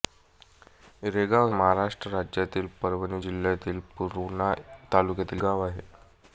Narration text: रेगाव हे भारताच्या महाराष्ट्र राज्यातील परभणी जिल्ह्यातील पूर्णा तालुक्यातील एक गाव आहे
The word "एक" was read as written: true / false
false